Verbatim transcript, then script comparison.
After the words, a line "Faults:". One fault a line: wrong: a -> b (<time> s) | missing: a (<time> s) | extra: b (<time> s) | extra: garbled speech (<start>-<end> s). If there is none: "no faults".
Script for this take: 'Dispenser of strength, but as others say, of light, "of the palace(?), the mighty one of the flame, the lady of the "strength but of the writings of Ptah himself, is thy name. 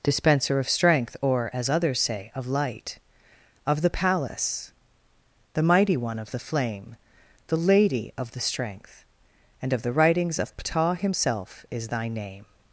'Dispenser of strength, or as others say, of light, "of the palace(?), the mighty one of the flame, the lady of the "strength and of the writings of Ptah himself, is thy name.
Faults:
wrong: but -> or (1.2 s)
wrong: but -> and (9.6 s)